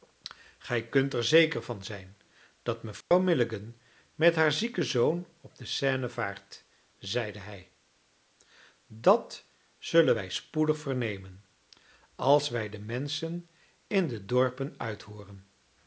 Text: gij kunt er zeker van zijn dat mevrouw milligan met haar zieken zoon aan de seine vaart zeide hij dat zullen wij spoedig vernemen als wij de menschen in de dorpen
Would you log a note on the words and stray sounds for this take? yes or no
yes